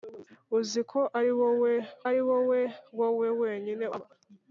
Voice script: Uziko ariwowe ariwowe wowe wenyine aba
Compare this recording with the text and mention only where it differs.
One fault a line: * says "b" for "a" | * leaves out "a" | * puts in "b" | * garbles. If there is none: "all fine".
all fine